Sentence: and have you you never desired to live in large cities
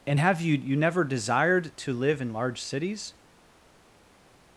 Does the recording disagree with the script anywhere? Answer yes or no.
no